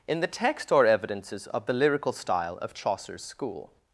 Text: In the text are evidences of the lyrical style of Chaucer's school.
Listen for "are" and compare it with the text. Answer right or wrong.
wrong